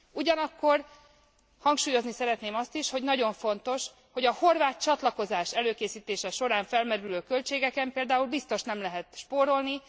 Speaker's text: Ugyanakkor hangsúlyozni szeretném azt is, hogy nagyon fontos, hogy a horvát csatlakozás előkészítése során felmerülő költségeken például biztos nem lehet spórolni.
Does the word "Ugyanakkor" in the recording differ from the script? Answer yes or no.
no